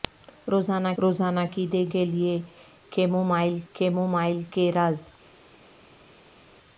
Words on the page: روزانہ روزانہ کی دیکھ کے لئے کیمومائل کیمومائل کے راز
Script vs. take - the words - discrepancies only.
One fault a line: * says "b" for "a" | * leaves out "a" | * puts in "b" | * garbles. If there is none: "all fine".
all fine